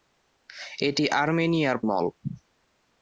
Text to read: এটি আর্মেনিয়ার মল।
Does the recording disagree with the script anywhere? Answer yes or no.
no